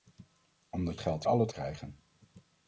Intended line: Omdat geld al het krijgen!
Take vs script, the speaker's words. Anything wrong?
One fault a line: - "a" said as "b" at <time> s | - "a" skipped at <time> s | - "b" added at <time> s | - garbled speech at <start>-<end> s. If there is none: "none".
none